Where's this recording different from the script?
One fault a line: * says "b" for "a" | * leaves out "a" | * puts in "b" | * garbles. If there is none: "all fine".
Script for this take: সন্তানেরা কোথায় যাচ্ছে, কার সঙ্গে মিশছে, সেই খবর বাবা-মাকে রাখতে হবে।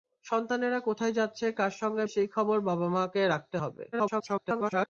* leaves out "মিশছে"
* garbles